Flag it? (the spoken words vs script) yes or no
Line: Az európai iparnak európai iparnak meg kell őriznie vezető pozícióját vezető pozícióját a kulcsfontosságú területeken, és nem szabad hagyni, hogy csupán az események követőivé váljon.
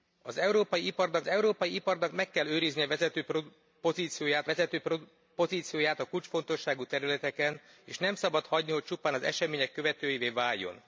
no